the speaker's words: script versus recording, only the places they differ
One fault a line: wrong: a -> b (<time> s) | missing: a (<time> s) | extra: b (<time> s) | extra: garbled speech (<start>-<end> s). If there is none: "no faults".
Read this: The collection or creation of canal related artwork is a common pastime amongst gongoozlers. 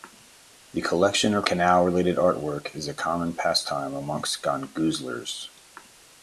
missing: creation of (1.4 s)